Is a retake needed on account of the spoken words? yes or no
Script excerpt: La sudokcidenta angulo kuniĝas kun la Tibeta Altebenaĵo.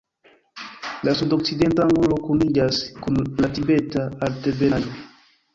no